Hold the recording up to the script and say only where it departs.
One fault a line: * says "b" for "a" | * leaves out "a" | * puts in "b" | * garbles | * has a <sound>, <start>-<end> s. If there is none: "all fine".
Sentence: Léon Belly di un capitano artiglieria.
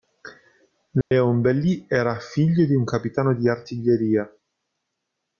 * has a dropout, 1.0-1.1 s
* puts in "era figlio"
* puts in "di"